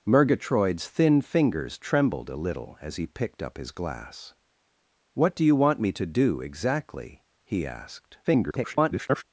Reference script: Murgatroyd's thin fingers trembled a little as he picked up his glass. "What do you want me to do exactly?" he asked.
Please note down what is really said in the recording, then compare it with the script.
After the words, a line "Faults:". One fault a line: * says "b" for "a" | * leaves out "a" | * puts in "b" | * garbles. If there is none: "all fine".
Murgatroyd's thin fingers trembled a little as he picked up his glass. "What do you want me to do exactly?" he asked. [garbled]
Faults:
* garbles